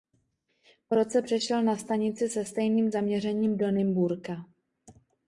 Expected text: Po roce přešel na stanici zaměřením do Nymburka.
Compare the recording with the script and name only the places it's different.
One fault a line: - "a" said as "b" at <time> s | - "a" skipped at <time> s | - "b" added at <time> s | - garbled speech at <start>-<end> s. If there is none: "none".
- "se stejným" added at 2.3 s